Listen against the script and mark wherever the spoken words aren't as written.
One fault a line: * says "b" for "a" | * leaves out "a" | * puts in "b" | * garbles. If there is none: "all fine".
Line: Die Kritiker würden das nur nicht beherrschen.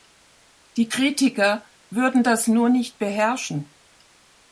all fine